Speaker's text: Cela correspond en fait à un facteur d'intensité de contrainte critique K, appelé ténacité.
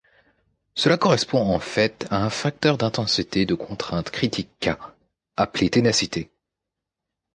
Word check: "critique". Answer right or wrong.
right